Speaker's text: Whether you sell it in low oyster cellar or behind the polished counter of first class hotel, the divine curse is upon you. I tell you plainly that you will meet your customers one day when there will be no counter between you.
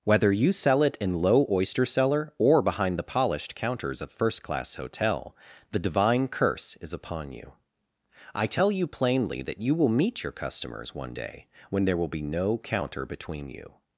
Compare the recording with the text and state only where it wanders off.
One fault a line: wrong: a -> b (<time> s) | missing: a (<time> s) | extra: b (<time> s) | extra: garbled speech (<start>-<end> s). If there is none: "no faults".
wrong: counter -> counters (3.5 s)